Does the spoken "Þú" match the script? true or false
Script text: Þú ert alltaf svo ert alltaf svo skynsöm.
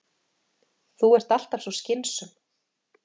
true